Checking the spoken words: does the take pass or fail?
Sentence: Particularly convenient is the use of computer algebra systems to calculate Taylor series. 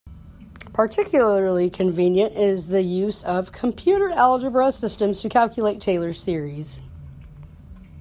pass